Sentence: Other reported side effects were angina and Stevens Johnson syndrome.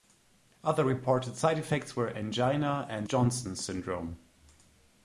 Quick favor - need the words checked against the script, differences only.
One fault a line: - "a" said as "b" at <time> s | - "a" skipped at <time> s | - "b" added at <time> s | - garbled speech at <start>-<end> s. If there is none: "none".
- "Stevens" skipped at 3.1 s